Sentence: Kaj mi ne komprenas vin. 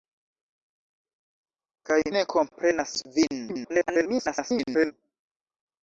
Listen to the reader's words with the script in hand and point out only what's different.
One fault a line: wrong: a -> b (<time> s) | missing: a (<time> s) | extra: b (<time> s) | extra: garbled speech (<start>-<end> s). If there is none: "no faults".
missing: mi (2.0 s)
extra: garbled speech (3.5-4.9 s)